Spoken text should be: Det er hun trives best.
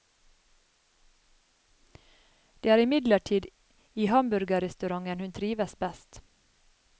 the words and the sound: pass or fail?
fail